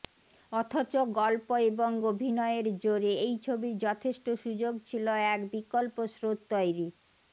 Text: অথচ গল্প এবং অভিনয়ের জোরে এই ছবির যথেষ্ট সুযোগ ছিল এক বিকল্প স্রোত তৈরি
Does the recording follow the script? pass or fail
pass